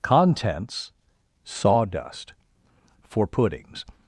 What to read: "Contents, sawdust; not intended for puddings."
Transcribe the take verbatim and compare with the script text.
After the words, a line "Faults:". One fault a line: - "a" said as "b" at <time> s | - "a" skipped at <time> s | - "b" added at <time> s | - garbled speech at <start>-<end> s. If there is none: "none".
"Contents, sawdust; for puddings."
Faults:
- "not intended" skipped at 2.3 s